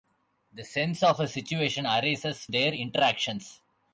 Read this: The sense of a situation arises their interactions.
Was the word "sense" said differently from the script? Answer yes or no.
no